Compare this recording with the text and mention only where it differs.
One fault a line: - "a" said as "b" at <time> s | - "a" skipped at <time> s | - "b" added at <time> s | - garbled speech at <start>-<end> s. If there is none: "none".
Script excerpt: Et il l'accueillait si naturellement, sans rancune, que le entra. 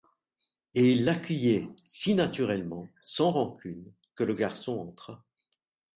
- "garçon" added at 4.3 s